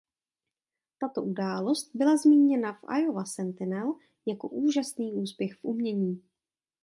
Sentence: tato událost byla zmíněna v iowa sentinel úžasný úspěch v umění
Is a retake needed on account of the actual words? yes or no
yes